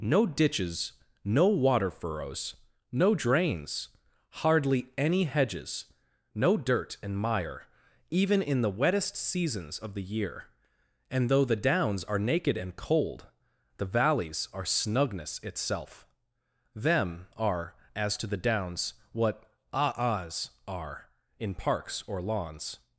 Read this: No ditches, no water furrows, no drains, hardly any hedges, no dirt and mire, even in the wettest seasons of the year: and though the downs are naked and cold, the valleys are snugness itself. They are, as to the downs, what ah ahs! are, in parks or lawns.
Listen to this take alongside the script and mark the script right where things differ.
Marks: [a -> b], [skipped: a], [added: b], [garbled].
No ditches, no water furrows, no drains, hardly any hedges, no dirt and mire, even in the wettest seasons of the year: and though the downs are naked and cold, the valleys are snugness itself. [They -> Them] are, as to the downs, what ah ahs! are, in parks or lawns.